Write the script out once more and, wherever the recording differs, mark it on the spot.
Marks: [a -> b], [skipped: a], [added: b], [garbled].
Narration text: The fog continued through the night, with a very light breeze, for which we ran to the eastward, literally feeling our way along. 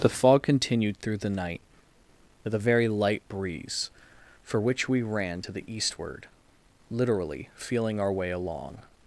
The fog continued through the night, with a very light breeze, for which we ran to the eastward, literally feeling our way along.